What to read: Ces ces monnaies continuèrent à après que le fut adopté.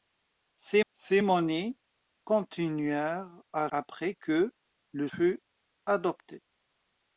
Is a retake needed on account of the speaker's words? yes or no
no